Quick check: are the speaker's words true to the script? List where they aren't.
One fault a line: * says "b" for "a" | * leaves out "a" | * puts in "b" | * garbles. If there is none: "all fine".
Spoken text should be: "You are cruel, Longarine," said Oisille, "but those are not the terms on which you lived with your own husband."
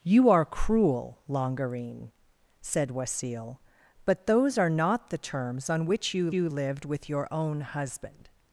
* puts in "you"